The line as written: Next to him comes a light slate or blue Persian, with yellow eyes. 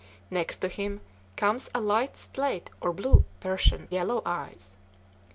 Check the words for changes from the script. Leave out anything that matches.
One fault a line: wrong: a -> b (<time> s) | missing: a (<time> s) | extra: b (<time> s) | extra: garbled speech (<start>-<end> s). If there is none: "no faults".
missing: with (3.9 s)